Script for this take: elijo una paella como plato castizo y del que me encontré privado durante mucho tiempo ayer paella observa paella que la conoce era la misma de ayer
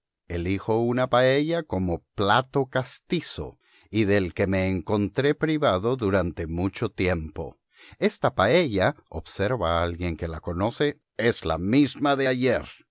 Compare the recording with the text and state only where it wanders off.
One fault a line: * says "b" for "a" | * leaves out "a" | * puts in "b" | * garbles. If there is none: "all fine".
* says "esta" for "ayer"
* says "alguien" for "paella"
* says "es" for "era"